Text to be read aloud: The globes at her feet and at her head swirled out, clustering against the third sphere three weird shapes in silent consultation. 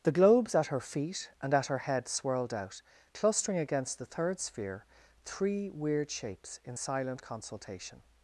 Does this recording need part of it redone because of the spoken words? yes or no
no